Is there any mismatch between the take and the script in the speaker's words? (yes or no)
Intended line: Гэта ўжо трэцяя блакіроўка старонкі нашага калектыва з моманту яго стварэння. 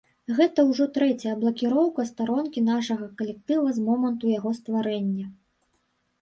no